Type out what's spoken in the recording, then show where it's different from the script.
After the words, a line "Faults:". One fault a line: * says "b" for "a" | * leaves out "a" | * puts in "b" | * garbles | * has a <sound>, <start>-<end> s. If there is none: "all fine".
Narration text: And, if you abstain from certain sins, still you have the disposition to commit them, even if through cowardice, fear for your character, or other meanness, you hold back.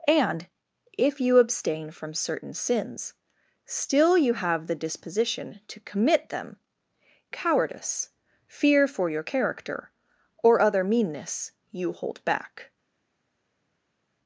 And, if you abstain from certain sins, still you have the disposition to commit them, cowardice, fear for your character, or other meanness, you hold back.
Faults:
* leaves out "even if through"